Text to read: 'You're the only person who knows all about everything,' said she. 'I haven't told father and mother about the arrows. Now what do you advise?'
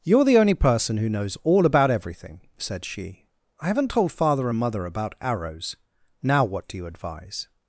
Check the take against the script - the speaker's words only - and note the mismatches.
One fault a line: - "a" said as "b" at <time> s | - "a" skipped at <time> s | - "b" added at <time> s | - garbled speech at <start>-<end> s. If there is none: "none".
- "the" skipped at 5.1 s